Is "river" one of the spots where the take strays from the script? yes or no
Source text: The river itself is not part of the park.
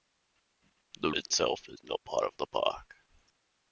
yes